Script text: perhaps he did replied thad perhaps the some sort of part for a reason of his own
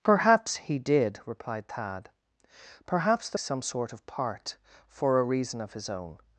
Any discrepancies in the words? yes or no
no